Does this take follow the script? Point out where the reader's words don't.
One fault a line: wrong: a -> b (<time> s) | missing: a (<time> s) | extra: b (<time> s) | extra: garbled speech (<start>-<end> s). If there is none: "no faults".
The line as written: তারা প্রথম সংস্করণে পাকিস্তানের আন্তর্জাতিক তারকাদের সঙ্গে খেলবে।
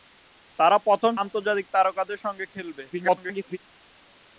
missing: সংস্করণে পাকিস্তানের (1.1 s)
extra: garbled speech (2.9-3.6 s)